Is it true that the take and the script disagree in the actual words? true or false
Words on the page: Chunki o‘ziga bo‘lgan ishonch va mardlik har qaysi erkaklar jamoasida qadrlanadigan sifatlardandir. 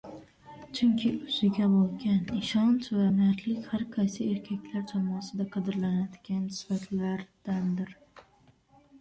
false